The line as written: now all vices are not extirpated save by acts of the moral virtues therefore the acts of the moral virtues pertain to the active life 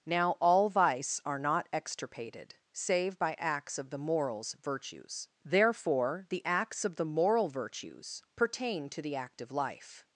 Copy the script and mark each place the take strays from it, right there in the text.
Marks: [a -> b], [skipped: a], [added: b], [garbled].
now all [vices -> vice] are not extirpated save by acts of the [moral -> morals] virtues therefore the acts of the moral virtues pertain to the active life